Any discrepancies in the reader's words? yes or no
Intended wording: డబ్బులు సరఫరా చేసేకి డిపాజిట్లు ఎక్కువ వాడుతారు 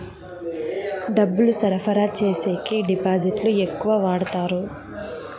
no